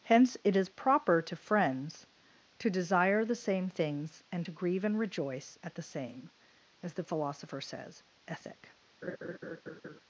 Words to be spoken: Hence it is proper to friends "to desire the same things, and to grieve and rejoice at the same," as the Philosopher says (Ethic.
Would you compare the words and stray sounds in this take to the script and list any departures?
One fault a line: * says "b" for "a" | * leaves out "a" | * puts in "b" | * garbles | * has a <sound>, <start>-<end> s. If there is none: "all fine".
* has a laugh, 9.0-10.0 s